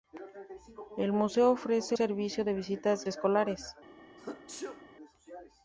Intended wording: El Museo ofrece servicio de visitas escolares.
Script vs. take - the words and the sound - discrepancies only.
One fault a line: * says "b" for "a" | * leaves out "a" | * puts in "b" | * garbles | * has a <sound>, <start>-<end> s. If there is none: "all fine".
* has a sneeze, 4.2-4.8 s